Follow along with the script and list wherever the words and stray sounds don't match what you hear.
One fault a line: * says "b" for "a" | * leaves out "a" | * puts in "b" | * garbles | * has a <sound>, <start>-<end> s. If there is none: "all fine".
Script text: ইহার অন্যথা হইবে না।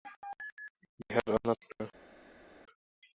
* leaves out "হইবে"